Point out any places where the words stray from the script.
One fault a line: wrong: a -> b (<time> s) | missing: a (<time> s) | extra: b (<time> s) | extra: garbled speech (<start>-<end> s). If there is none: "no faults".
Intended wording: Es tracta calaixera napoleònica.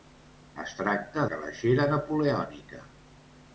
no faults